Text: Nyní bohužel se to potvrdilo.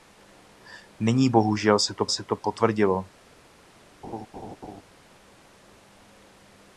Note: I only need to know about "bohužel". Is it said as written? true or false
true